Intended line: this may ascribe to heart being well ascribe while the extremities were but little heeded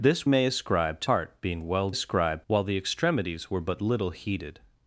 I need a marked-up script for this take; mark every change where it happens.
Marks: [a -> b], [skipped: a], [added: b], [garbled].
this may ascribe to heart being well ascribe while the extremities were but little heeded